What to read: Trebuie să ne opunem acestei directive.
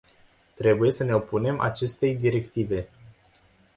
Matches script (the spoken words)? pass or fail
pass